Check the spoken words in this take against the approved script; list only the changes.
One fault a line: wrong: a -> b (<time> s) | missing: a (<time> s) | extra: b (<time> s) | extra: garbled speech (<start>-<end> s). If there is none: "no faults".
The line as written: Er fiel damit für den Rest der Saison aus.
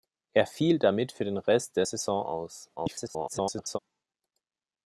extra: garbled speech (2.8-3.8 s)